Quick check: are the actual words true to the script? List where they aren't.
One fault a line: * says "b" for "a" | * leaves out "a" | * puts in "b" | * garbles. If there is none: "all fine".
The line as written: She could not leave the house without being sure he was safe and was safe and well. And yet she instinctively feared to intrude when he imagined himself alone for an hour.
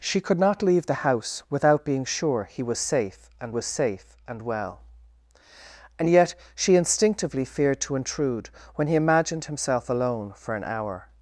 all fine